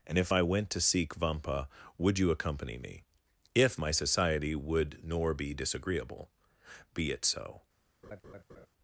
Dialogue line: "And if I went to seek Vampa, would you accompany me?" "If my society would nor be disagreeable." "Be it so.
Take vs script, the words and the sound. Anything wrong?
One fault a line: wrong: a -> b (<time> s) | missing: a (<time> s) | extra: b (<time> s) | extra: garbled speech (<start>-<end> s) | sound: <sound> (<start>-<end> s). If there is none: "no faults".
sound: laugh (8.0-8.7 s)